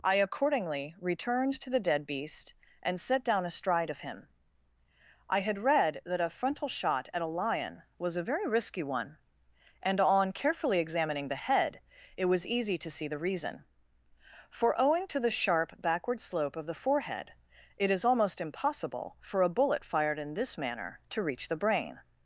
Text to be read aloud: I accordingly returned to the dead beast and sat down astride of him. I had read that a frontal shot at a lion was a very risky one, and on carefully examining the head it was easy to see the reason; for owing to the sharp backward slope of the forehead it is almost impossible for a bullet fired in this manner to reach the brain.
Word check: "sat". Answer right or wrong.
wrong